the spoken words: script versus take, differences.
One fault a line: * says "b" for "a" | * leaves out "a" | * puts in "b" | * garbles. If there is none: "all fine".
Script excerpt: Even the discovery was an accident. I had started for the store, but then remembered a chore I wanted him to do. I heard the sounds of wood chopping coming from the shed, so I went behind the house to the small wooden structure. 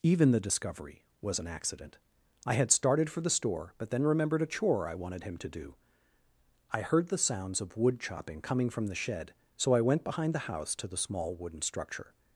all fine